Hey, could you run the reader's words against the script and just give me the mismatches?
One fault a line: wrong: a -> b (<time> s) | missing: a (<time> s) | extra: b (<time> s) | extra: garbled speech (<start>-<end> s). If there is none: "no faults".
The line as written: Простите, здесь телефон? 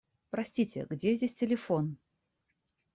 extra: где (0.9 s)